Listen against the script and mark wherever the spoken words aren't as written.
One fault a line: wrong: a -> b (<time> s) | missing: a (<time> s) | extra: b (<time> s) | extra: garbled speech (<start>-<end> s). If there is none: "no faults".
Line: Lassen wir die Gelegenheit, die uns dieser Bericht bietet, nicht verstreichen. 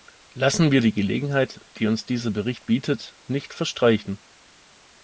no faults